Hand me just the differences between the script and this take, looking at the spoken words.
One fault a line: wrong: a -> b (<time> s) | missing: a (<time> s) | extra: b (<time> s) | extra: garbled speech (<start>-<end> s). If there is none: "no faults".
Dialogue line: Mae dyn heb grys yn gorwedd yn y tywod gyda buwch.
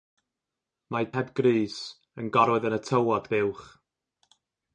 missing: dyn (1.1 s)
missing: gyda (3.3 s)